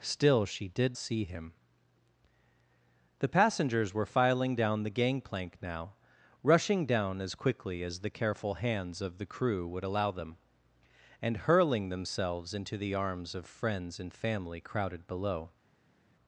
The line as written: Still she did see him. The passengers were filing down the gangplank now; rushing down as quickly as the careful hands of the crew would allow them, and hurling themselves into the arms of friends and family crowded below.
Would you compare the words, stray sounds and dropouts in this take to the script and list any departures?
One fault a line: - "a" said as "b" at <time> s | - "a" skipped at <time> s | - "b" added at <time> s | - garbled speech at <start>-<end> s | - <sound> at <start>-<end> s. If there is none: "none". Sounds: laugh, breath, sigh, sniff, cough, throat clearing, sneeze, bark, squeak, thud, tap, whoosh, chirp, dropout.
none